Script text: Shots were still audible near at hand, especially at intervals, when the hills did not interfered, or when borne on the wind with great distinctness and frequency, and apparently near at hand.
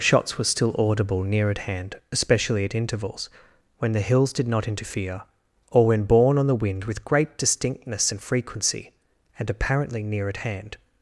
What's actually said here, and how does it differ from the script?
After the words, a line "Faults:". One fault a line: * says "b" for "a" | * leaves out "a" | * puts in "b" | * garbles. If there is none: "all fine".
Shots were still audible near at hand, especially at intervals, when the hills did not interfere, or when borne on the wind with great distinctness and frequency, and apparently near at hand.
Faults:
* says "interfere" for "interfered"